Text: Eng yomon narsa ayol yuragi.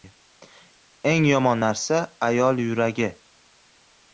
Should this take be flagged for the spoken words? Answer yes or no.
no